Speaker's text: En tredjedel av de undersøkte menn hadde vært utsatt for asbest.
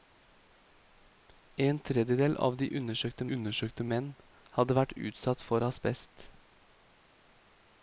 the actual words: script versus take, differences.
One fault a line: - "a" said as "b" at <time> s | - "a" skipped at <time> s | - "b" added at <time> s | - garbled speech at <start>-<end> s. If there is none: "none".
- "undersøkte" added at 3.4 s